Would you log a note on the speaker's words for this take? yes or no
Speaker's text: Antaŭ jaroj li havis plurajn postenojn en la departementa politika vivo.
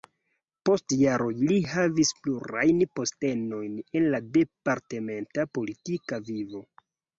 yes